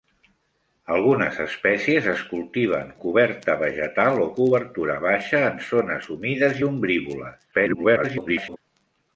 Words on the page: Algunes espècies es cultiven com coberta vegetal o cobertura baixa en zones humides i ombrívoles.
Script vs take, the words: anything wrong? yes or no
yes